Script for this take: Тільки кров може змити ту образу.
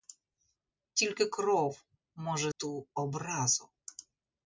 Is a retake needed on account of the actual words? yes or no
yes